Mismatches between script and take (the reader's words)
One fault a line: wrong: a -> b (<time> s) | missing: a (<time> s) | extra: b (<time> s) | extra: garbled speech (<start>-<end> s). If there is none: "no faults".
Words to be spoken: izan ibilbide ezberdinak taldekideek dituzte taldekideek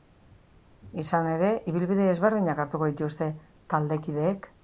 extra: ere (1.3 s)
wrong: taldekideek -> hartuko (2.6 s)